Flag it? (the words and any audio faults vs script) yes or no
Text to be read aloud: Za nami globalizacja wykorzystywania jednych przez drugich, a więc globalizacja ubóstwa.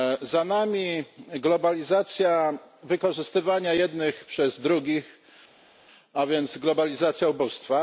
no